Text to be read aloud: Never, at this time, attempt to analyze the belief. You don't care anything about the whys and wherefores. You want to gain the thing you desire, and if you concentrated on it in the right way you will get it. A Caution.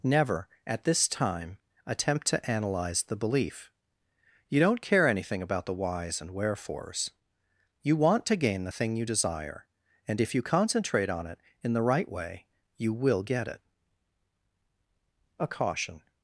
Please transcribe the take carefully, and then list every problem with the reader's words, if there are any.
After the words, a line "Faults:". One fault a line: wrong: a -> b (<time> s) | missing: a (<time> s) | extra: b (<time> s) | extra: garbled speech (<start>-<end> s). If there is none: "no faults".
Never, at this time, attempt to analyze the belief. You don't care anything about the whys and wherefores. You want to gain the thing you desire, and if you concentrate on it in the right way you will get it. A Caution.
Faults:
wrong: concentrated -> concentrate (10.4 s)